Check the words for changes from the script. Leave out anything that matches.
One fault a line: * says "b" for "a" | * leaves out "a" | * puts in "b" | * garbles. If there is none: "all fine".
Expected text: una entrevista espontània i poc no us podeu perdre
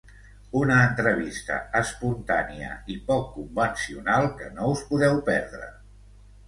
* puts in "convencional que"